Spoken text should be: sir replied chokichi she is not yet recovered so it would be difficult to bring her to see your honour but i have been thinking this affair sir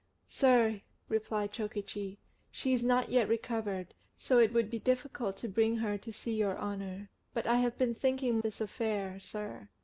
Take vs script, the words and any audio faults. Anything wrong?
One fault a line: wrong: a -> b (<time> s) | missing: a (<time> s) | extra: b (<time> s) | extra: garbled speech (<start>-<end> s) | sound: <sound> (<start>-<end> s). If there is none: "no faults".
no faults